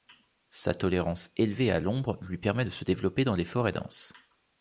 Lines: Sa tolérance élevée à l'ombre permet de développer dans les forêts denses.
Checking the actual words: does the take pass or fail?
fail